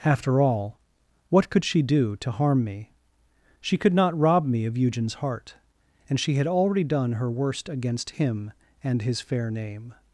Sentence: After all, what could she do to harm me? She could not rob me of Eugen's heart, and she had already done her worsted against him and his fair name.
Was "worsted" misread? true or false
true